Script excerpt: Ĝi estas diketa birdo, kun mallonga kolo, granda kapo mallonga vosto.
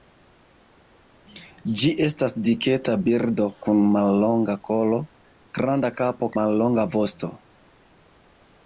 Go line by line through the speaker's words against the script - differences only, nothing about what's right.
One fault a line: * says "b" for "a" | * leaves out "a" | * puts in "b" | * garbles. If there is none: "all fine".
all fine